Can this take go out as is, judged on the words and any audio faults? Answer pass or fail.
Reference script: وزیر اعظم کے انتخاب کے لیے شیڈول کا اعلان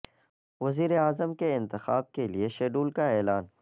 pass